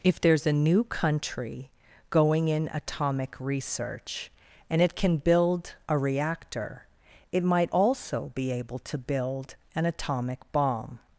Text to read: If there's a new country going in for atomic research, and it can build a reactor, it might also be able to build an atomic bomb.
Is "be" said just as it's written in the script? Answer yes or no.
yes